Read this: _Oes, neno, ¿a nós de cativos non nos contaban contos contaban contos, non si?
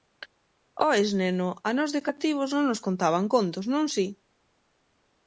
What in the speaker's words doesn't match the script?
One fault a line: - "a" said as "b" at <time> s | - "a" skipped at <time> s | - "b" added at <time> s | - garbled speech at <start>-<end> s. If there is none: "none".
- "contaban contos" skipped at 3.6 s